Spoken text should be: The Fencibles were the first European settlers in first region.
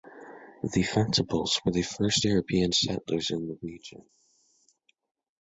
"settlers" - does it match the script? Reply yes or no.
yes